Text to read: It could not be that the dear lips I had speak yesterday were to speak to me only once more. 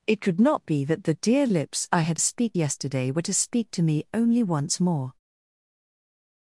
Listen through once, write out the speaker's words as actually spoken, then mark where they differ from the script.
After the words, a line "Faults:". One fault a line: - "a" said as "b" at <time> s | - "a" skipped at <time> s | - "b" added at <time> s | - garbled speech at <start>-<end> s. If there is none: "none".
It could not be that the dear lips I had speak yesterday were to speak to me only once more.
Faults:
none